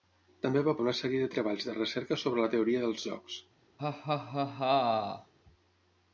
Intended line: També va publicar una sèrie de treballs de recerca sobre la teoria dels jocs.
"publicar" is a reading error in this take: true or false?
true